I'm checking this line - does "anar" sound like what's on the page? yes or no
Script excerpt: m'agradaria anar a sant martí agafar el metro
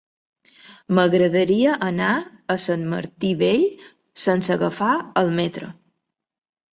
yes